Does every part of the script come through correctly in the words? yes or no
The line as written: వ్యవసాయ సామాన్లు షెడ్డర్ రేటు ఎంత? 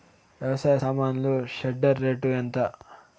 yes